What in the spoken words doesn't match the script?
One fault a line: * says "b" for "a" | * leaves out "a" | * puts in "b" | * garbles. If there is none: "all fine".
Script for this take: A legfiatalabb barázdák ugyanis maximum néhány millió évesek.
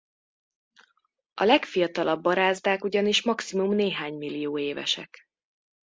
all fine